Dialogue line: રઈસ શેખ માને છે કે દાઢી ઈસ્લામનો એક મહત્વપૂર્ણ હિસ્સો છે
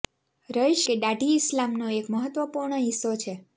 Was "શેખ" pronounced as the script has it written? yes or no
no